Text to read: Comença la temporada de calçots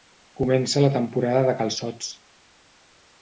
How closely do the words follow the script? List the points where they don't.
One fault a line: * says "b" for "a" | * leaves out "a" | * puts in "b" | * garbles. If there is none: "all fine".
all fine